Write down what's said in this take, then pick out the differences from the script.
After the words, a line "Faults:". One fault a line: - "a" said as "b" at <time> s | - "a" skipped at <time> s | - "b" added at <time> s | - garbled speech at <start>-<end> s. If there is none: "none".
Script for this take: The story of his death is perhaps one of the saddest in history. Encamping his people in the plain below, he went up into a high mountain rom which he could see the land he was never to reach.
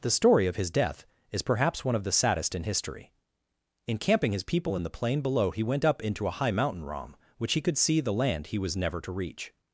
The story of his death is perhaps one of the saddest in history. Encamping his people in the plain below, he went up into a high mountain rom which he could see the land he was never to reach.
Faults:
none